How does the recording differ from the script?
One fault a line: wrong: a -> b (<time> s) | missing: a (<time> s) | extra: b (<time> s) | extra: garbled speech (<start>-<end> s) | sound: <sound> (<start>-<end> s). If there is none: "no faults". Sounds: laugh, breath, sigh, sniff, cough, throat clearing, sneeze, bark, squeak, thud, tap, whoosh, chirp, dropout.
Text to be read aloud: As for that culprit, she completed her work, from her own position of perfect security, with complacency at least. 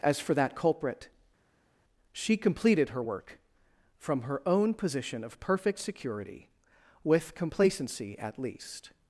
no faults